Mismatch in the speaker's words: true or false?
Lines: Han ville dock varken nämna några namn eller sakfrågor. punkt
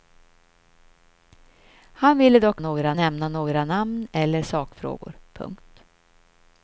true